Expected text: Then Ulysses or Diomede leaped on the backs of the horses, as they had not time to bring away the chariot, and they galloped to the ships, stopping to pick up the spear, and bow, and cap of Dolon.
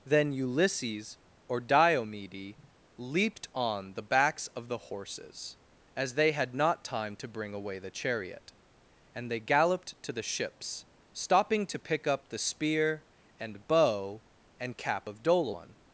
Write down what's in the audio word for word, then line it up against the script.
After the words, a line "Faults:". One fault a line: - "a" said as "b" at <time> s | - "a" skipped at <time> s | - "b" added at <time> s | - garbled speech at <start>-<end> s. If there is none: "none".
Then Ulysses or Diomede leaped on the backs of the horses, as they had not time to bring away the chariot, and they galloped to the ships, stopping to pick up the spear, and bow, and cap of Dolon.
Faults:
none